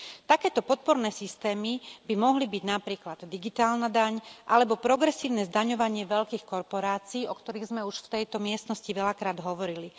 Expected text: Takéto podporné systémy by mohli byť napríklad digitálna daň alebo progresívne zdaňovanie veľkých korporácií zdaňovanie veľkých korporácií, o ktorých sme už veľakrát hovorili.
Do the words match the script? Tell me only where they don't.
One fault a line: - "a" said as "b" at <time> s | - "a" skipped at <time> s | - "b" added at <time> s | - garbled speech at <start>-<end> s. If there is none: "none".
- "zdaňovanie veľkých korporácií" skipped at 7.3 s
- "v tejto miestnosti" added at 8.1 s